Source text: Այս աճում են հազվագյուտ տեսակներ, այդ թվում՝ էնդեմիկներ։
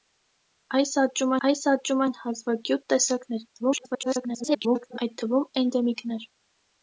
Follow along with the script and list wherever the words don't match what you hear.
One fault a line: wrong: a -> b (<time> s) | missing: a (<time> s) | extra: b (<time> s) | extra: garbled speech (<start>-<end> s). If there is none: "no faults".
extra: այս աճում (1.5 s)
extra: garbled speech (3.6-5.0 s)